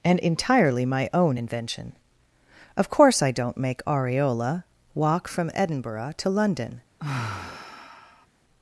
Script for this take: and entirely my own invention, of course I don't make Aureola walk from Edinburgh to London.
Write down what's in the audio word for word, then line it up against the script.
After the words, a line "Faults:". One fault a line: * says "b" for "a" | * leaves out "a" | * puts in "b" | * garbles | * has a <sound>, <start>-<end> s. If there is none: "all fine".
and entirely my own invention, of course I don't make Aureola walk from Edinburgh to London.
Faults:
* has a sigh, 7.0-8.3 s